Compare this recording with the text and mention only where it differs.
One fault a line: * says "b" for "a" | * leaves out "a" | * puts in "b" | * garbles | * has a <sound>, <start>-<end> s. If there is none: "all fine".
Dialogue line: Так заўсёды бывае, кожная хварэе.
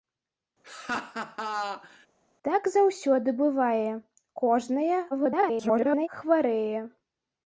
* has a laugh, 0.6-2.1 s
* garbles